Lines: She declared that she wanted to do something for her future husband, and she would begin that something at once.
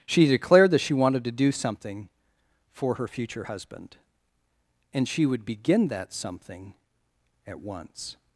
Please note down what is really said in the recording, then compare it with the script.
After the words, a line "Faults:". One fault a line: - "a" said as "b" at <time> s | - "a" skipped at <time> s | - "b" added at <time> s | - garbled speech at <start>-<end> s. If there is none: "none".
She declared that she wanted to do something for her future husband, and she would begin that something at once.
Faults:
none